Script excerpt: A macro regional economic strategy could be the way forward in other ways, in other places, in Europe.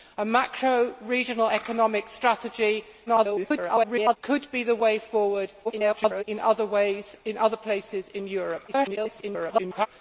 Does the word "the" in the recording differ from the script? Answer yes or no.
no